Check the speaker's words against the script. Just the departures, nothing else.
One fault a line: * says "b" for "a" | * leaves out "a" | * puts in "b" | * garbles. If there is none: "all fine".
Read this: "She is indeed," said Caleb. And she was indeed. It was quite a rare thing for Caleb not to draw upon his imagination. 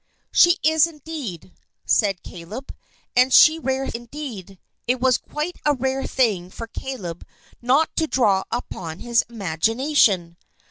* says "rare" for "was"